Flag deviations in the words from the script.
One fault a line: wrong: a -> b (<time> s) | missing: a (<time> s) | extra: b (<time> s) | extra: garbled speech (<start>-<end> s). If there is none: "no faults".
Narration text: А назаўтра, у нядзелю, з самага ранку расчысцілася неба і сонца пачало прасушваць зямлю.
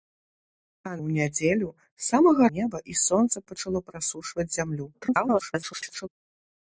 missing: назаўтра (0.9 s)
missing: ранку расчысцілася (2.5 s)
extra: garbled speech (4.9-6.1 s)